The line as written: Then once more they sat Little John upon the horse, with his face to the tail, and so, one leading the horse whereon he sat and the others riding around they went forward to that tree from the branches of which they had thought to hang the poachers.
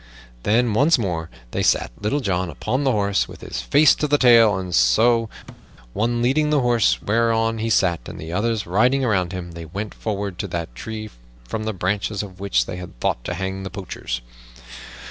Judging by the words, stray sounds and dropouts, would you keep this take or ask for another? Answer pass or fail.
fail